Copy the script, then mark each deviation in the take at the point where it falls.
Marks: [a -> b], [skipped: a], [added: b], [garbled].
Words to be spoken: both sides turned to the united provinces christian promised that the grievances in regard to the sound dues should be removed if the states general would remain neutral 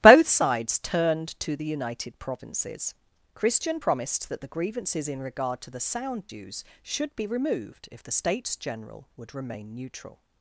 both sides turned to the united provinces christian promised that the grievances in regard to the sound dues should be removed if the states general would remain neutral